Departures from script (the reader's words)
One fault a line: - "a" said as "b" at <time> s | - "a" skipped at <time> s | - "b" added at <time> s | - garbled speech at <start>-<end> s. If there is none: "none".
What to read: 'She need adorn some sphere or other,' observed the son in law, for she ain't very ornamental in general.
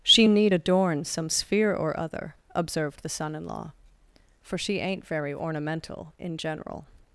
none